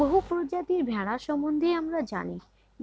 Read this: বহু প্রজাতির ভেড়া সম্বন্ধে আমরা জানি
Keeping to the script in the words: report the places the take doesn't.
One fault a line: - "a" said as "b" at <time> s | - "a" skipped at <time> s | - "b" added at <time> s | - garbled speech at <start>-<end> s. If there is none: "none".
none